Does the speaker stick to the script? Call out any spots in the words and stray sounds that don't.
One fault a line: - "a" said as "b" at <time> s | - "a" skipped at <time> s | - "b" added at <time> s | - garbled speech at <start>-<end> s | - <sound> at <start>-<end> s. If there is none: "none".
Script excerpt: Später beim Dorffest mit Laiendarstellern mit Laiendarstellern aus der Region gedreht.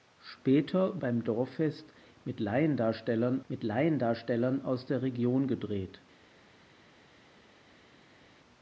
none